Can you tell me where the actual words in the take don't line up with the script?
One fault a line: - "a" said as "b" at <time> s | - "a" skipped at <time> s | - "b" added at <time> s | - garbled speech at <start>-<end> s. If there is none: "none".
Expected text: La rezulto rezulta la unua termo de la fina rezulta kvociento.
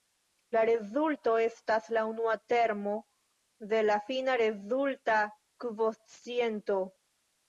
- "rezulta" said as "estas" at 1.4 s